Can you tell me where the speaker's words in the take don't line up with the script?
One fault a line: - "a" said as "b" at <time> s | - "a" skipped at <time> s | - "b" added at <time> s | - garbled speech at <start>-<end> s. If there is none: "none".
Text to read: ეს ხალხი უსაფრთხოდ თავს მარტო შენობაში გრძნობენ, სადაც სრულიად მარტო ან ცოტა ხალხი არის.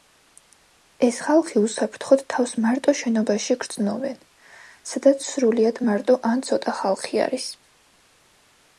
none